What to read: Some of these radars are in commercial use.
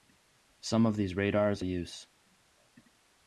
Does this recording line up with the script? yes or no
no